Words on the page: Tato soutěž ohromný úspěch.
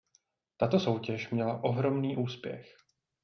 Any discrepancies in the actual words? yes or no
yes